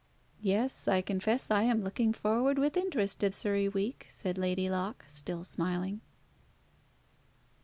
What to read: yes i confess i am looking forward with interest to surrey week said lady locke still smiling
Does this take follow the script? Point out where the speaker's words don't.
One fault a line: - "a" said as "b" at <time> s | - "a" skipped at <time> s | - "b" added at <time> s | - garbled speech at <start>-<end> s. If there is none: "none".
none